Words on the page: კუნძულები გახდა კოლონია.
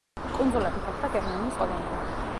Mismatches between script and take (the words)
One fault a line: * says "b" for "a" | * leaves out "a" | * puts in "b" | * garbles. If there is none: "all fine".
* puts in "გერმანიის"